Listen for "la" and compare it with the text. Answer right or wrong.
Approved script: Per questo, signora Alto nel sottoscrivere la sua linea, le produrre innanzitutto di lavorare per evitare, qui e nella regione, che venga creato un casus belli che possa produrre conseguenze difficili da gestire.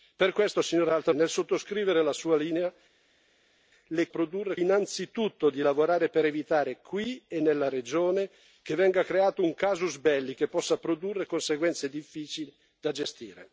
right